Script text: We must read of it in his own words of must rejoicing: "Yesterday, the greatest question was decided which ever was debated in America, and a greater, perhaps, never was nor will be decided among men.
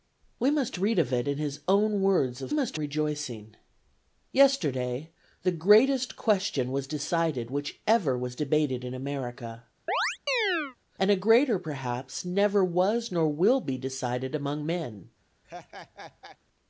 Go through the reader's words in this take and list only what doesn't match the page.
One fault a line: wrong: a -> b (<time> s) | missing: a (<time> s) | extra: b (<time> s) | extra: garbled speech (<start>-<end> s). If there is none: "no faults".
no faults